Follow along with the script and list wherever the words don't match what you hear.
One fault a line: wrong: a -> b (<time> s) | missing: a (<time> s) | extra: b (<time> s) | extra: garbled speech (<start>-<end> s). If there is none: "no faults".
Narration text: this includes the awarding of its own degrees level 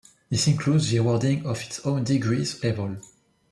no faults